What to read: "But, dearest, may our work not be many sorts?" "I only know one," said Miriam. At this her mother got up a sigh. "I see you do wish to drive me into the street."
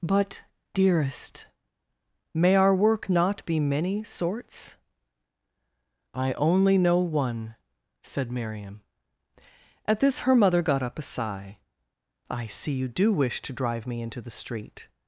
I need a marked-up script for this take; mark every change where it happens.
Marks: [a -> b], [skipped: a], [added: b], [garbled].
"But, dearest, may our work not be many sorts?" "I only know one," said Miriam. At this her mother got up a sigh. "I see you do wish to drive me into the street."